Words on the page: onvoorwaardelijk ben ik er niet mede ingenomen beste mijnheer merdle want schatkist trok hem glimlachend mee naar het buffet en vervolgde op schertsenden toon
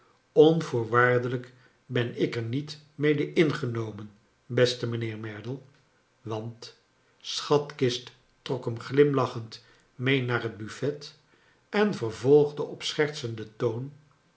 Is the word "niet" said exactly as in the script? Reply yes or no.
yes